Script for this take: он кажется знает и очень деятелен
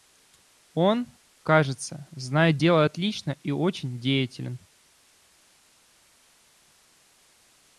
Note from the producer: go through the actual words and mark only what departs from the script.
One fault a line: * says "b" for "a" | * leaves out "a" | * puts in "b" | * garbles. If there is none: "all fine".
* puts in "дело отлично"